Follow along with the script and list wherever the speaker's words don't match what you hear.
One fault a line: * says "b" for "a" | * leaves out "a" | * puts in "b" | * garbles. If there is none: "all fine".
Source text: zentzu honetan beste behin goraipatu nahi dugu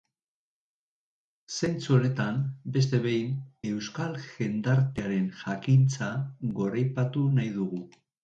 * puts in "euskal jendartearen jakintza"